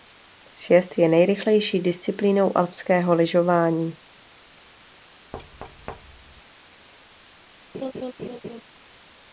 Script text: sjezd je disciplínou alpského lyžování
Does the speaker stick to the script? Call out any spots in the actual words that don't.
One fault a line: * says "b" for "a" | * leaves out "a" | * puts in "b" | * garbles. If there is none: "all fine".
* puts in "nejrychlejší"